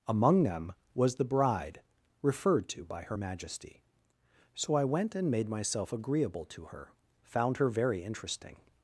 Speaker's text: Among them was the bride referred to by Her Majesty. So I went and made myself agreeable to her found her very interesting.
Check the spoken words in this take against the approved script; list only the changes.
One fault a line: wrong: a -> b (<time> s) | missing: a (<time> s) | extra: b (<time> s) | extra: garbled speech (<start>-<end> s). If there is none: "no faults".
no faults